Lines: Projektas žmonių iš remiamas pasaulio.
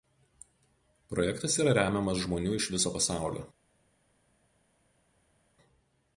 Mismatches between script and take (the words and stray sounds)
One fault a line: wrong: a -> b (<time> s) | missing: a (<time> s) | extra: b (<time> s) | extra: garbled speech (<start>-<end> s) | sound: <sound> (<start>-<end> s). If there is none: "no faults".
extra: yra remiamas (1.6 s)
wrong: remiamas -> viso (2.8 s)